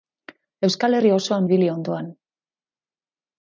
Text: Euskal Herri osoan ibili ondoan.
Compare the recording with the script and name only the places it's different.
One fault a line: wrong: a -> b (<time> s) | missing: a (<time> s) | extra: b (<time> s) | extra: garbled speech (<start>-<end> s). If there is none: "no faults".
no faults